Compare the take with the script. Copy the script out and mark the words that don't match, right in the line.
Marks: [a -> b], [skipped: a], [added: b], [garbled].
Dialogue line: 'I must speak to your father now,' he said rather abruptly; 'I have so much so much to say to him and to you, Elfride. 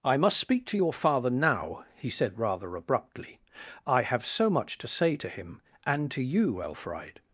'I must speak to your father now,' he said rather abruptly; 'I have so much [skipped: so much] to say to him and to you, Elfride.